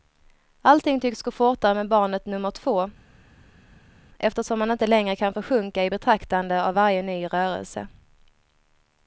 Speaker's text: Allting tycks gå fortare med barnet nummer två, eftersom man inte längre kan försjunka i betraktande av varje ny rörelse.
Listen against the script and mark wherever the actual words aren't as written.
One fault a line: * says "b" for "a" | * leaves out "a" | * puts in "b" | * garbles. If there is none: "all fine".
all fine